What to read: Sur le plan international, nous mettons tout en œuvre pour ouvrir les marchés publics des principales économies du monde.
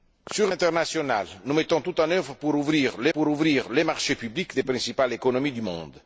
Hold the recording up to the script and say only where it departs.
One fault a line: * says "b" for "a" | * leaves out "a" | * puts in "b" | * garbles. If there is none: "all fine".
* leaves out "le plan"
* puts in "pour ouvrir les"